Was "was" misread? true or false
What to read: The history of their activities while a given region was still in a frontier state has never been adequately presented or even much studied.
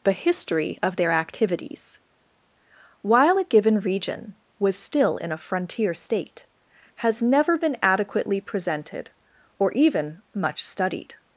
false